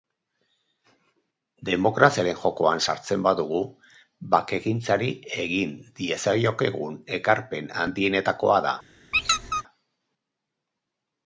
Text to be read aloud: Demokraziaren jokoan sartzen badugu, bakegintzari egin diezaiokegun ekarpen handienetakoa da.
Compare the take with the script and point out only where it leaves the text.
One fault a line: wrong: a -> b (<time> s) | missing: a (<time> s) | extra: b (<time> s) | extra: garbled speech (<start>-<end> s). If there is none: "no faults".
no faults